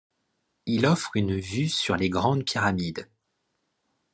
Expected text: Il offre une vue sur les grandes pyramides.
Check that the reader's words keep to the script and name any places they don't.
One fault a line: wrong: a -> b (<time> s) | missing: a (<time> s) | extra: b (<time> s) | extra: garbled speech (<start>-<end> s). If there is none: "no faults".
no faults